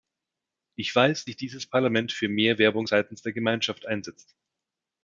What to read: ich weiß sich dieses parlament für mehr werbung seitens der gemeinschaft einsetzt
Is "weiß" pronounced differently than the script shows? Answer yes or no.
no